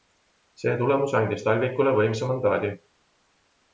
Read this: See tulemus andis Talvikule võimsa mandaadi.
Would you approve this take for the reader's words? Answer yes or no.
yes